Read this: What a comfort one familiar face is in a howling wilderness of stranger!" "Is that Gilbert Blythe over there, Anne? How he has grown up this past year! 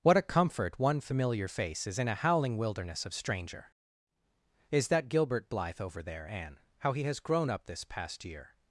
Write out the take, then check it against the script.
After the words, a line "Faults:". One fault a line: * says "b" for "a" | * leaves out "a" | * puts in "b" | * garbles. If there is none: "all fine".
What a comfort one familiar face is in a howling wilderness of stranger!" "Is that Gilbert Blythe over there, Anne? How he has grown up this past year!
Faults:
all fine